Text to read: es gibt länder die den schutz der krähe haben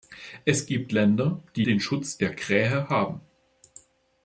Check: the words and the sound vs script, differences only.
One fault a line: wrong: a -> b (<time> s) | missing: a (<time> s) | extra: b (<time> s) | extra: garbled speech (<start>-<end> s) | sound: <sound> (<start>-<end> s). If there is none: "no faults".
no faults